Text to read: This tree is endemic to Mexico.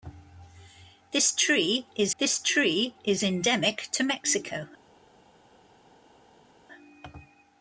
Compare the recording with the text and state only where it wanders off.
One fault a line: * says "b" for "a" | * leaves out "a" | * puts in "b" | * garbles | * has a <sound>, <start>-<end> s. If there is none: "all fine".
* puts in "this tree is"